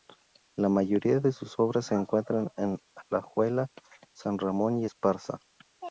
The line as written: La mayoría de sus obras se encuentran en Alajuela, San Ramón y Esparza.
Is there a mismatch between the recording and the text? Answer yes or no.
no